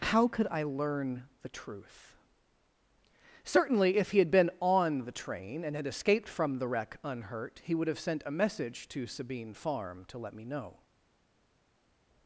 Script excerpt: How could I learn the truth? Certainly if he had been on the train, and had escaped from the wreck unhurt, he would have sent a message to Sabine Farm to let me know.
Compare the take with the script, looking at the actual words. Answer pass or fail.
pass